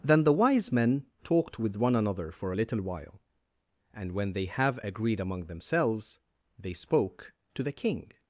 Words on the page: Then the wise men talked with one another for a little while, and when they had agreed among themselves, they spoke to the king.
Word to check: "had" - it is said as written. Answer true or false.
false